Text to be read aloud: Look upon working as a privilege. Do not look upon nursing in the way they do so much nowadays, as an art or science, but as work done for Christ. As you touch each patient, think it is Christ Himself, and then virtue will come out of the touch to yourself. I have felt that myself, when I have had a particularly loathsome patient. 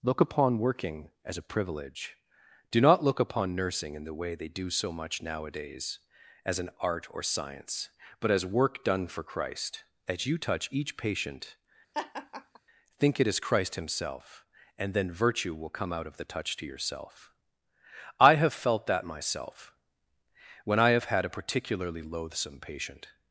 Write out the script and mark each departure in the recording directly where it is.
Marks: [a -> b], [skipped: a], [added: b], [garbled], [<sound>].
Look upon working as a privilege. Do not look upon nursing in the way they do so much nowadays, as an art or science, but as work done for Christ. As you touch each patient, [laugh] think it is Christ Himself, and then virtue will come out of the touch to yourself. I have felt that myself, when I have had a particularly loathsome patient.